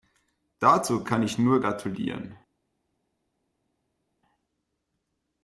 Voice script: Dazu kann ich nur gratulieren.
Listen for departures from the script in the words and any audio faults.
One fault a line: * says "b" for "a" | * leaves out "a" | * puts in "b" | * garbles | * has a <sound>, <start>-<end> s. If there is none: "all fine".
all fine